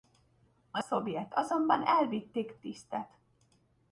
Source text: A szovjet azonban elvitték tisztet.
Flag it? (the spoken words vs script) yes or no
no